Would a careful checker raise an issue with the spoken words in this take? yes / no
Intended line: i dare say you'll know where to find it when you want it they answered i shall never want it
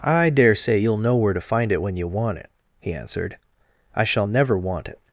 yes